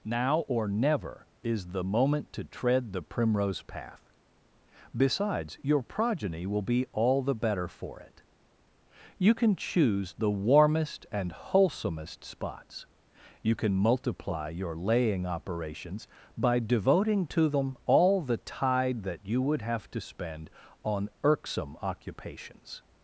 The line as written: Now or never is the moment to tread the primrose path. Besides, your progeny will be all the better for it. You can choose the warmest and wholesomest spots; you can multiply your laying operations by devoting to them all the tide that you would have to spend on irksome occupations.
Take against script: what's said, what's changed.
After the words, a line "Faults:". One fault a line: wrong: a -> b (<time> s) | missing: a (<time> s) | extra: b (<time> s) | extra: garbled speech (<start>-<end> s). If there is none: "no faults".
Now or never is the moment to tread the primrose path. Besides, your progeny will be all the better for it. You can choose the warmest and wholesomest spots; you can multiply your laying operations by devoting to them all the tide that you would have to spend on irksome occupations.
Faults:
no faults